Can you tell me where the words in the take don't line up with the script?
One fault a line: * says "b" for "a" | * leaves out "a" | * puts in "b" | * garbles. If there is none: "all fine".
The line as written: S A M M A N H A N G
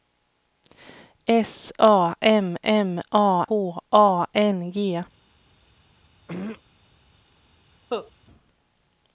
* leaves out "N"